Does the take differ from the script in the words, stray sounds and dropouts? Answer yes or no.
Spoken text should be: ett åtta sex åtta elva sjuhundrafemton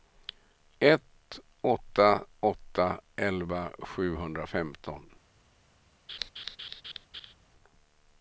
yes